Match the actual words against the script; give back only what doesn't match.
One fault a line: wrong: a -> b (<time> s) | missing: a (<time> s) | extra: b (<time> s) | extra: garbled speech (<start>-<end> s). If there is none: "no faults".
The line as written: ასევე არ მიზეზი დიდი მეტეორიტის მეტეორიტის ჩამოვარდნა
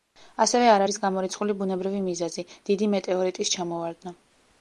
extra: არის გამორიცხული ბუნებრივი (0.8 s)
missing: მეტეორიტის (3.5 s)